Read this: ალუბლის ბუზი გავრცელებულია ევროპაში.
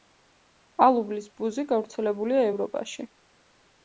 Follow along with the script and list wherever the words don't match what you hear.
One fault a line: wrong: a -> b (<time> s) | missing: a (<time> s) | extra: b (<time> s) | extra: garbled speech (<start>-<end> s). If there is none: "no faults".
no faults